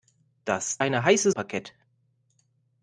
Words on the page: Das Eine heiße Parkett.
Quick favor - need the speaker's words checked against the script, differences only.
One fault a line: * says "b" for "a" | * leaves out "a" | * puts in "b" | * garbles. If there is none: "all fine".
all fine